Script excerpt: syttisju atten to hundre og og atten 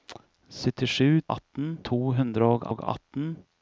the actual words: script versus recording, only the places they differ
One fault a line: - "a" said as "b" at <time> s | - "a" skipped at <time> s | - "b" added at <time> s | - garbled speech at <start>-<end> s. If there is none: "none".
none